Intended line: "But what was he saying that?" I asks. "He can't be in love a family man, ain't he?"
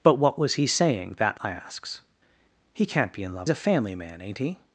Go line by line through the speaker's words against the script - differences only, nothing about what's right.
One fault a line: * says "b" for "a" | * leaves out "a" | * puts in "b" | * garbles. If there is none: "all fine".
all fine